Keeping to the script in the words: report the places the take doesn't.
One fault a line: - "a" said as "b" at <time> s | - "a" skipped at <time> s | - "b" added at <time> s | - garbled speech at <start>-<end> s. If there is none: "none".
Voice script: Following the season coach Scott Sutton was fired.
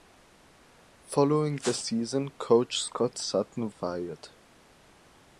- "was" skipped at 3.7 s